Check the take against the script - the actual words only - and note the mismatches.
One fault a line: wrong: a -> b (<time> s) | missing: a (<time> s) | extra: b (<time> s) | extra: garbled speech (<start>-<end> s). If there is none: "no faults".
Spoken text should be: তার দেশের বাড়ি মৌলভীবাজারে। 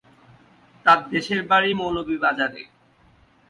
no faults